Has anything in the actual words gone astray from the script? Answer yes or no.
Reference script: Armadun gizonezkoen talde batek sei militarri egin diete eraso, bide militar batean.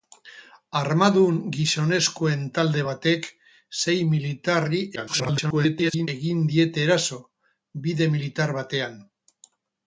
yes